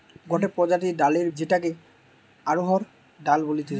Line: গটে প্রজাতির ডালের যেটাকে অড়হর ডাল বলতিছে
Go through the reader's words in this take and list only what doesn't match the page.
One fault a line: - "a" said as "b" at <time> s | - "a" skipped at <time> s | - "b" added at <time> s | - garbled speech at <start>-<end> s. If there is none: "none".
none